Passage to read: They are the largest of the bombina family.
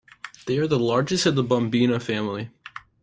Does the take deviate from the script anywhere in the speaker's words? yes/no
no